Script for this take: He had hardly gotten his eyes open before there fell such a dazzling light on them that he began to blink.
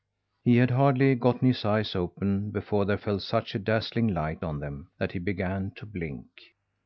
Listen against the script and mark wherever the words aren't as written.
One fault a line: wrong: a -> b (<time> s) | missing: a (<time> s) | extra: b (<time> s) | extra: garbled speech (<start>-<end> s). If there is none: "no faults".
no faults